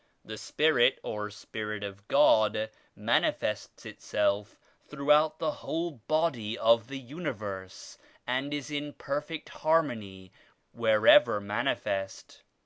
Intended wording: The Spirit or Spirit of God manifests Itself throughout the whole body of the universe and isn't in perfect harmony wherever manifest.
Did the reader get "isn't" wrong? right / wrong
wrong